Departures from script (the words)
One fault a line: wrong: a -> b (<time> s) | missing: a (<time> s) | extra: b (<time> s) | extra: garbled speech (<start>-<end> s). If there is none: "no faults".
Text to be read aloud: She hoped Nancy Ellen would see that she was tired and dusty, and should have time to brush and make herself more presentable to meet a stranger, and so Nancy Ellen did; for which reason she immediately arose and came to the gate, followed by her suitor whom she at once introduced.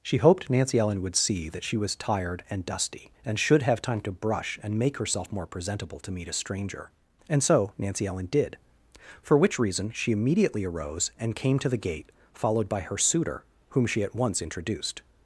no faults